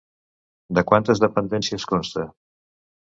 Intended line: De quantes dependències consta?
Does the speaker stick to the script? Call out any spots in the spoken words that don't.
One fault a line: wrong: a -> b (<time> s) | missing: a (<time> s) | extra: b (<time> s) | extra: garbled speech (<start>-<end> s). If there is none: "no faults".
no faults